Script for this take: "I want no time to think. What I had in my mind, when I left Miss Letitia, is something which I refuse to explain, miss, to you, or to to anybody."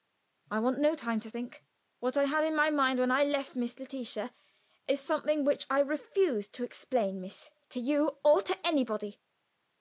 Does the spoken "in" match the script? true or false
true